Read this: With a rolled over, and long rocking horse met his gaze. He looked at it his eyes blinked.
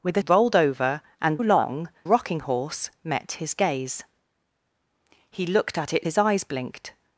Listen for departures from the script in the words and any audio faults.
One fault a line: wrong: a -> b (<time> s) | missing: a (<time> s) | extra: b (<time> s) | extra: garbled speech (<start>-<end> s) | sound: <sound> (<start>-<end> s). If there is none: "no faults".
no faults